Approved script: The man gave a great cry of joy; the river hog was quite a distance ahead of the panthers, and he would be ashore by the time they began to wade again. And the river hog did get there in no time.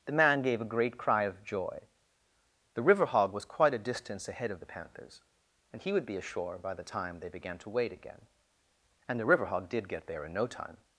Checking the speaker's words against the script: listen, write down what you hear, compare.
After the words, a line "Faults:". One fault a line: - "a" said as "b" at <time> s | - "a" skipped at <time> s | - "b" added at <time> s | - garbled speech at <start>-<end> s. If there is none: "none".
The man gave a great cry of joy; the river hog was quite a distance ahead of the panthers, and he would be ashore by the time they began to wade again. And the river hog did get there in no time.
Faults:
none